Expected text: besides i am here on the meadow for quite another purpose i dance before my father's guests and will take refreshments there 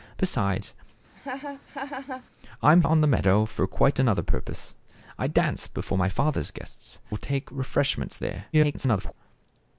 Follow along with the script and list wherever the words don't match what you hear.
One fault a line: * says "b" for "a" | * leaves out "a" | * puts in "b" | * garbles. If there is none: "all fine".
* leaves out "here"
* leaves out "and"
* garbles